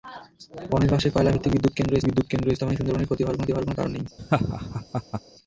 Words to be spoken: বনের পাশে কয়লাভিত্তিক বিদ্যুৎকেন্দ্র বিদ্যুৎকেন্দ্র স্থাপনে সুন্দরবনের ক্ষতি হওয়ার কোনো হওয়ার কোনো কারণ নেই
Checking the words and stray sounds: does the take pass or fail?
fail